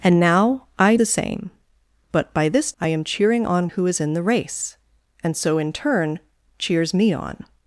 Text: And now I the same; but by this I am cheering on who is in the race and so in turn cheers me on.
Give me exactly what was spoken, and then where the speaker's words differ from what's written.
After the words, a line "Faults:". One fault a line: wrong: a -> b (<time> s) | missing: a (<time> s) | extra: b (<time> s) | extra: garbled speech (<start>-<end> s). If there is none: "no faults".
And now I the same; but by this I am cheering on who is in the race and so in turn cheers me on.
Faults:
no faults